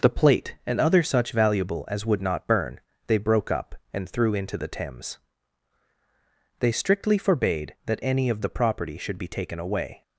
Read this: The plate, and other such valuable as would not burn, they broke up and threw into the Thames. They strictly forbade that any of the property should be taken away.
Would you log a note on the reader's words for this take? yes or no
no